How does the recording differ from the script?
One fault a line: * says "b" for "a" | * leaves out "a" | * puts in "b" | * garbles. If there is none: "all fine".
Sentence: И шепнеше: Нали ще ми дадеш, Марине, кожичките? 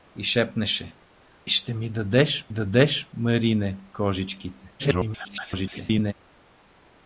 * leaves out "Нали"
* puts in "дадеш"
* garbles